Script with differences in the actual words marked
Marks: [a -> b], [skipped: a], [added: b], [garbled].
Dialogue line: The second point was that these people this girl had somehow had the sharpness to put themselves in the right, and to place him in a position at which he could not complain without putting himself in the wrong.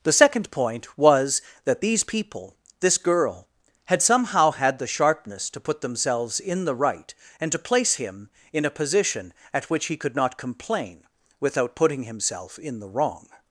The second point was that these people this girl had somehow had the sharpness to put themselves in the right, and to place him in a position at which he could not complain without putting himself in the wrong.